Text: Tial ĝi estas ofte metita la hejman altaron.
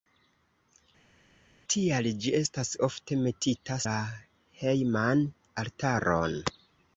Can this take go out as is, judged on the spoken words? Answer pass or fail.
pass